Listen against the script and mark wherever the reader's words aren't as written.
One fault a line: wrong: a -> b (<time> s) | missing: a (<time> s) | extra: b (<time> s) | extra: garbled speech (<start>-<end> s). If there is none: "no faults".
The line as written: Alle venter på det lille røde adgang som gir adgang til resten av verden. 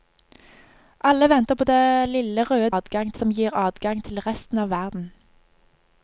no faults